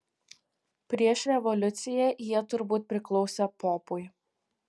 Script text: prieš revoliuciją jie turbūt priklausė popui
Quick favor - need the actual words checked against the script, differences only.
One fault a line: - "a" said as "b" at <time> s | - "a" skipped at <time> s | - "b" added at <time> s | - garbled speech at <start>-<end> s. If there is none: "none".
none